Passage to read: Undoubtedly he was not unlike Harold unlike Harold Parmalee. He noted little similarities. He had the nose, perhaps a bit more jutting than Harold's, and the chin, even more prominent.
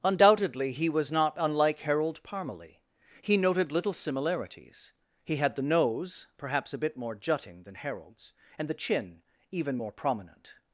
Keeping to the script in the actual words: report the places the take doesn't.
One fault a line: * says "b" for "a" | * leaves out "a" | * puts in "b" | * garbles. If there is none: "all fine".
* leaves out "unlike Harold"